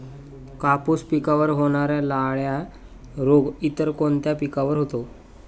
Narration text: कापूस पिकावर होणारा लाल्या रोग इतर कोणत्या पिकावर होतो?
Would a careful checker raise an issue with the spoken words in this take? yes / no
no